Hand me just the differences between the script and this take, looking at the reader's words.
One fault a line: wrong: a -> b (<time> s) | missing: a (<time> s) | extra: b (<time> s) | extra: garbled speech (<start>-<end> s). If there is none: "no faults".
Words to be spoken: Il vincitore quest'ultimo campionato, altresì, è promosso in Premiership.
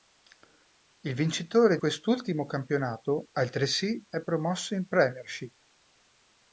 no faults